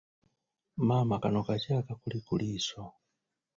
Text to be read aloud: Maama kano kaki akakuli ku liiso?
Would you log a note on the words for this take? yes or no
no